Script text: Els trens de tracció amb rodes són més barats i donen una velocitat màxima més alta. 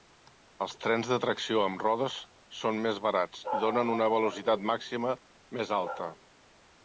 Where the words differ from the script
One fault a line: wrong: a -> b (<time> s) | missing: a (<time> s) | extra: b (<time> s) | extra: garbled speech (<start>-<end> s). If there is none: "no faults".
no faults